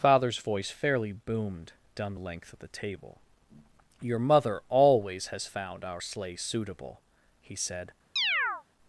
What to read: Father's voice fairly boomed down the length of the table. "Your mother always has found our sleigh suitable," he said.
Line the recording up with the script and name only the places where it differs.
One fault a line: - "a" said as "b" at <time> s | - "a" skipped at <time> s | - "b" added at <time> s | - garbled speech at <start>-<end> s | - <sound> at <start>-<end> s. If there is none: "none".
- chirp at 8.2-8.6 s